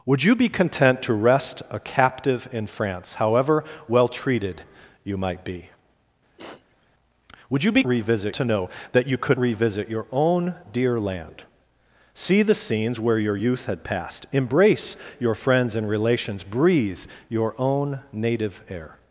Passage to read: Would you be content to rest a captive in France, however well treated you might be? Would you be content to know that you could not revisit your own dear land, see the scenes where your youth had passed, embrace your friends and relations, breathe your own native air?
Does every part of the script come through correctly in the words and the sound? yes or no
no